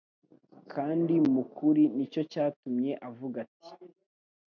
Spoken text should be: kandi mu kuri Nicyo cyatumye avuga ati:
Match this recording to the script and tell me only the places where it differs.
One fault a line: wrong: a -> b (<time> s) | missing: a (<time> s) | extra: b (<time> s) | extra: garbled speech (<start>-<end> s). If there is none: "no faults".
no faults